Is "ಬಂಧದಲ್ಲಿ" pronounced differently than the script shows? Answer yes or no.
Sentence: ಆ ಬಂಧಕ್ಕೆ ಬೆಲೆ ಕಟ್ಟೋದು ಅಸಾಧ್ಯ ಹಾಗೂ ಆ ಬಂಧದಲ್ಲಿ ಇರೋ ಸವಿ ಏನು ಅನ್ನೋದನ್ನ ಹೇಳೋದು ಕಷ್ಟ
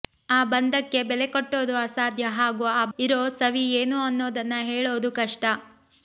yes